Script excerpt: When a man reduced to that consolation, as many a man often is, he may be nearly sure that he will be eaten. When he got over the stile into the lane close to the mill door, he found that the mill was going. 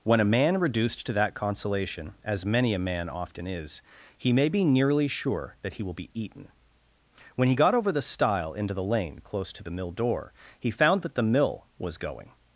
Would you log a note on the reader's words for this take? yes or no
no